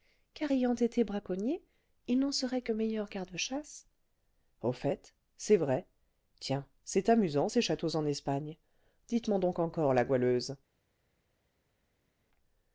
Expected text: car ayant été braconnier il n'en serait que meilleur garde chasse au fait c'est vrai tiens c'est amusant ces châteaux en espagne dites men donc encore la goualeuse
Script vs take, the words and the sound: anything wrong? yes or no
no